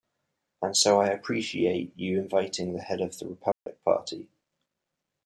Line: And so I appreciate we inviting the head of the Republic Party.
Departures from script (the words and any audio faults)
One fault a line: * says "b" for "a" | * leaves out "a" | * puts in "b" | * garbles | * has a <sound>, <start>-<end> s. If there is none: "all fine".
* says "you" for "we"
* has a dropout, 3.5-3.7 s